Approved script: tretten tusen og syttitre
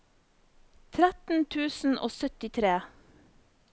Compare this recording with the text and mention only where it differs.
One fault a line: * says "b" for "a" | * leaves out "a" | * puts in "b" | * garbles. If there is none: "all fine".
all fine